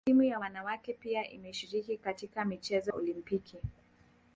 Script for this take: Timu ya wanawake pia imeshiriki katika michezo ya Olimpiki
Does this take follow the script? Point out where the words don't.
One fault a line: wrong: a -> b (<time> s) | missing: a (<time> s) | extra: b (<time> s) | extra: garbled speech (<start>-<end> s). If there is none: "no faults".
missing: ya (2.9 s)